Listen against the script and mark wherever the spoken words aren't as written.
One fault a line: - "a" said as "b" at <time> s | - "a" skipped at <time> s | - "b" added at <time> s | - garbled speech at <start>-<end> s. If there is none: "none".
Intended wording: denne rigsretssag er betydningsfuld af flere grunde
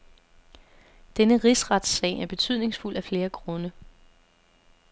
none